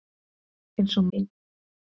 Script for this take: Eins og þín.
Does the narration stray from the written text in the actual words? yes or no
no